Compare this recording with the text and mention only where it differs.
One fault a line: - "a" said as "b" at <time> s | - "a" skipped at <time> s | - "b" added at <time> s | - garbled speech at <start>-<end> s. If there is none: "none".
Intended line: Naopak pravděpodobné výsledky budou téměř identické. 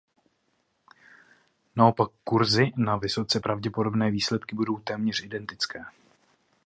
- "kurzy na vysoce" added at 2.2 s